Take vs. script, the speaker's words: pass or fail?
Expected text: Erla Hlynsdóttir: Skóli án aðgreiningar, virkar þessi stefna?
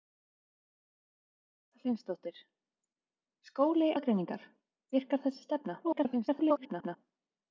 fail